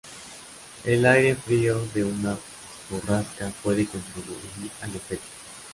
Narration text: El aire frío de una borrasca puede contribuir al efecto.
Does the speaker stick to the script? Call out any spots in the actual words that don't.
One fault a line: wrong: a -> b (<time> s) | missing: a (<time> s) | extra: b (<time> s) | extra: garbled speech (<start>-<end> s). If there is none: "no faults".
no faults